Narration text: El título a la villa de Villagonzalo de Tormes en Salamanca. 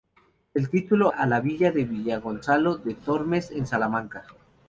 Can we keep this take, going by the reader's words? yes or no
yes